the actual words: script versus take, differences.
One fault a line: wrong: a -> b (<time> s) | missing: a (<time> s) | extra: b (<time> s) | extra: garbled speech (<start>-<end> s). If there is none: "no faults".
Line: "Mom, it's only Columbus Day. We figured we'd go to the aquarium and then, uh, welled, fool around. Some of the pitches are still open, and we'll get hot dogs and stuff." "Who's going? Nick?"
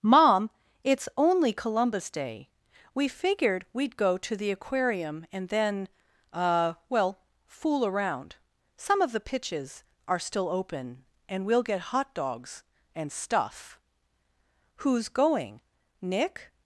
wrong: welled -> well (6.9 s)